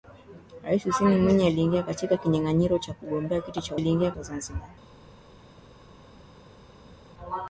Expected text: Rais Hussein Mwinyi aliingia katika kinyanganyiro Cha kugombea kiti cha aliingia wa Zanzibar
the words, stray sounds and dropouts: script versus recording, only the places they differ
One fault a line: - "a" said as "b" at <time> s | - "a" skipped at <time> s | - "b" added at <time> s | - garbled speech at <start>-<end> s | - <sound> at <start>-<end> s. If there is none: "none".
none